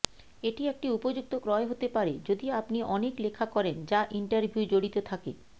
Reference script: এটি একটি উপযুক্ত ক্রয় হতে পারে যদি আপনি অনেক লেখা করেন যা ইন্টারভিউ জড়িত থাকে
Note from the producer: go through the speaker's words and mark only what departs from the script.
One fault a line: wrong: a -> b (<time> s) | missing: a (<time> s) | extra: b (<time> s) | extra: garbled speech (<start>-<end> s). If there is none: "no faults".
no faults